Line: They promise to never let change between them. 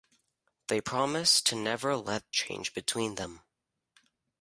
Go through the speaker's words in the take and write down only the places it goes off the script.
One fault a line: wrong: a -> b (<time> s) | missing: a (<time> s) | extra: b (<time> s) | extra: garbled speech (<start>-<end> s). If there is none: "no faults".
no faults